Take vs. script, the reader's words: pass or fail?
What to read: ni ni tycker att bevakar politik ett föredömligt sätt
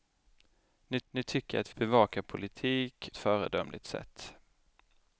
pass